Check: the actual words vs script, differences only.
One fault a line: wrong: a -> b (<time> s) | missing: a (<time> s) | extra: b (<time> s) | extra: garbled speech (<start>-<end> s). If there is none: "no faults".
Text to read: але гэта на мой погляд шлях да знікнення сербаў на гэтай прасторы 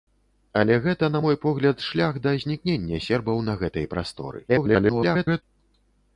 extra: garbled speech (4.5-5.4 s)